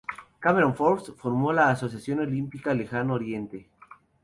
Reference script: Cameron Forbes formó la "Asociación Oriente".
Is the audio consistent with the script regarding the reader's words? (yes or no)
no